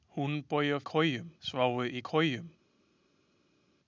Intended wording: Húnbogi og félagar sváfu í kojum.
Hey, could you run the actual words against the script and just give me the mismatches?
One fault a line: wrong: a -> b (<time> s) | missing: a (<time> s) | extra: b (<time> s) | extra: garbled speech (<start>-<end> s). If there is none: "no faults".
wrong: félagar -> kojum (0.8 s)